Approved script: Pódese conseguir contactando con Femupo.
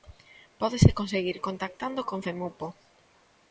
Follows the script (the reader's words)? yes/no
yes